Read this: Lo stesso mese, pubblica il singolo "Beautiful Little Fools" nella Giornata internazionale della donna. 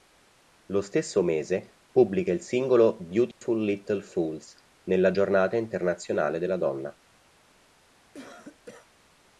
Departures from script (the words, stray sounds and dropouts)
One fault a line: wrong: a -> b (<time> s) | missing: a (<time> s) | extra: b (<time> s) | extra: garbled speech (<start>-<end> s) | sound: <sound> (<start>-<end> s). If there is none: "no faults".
sound: dropout (3.3-3.4 s)
sound: cough (8.1-8.9 s)